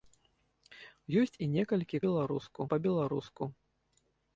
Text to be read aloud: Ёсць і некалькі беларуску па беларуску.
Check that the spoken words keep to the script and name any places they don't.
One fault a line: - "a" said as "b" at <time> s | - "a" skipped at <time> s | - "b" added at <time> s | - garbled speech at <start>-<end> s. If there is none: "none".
none